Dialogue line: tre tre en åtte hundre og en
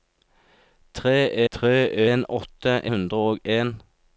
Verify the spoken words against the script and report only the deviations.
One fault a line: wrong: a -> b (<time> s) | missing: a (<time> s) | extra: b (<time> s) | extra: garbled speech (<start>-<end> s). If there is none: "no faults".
no faults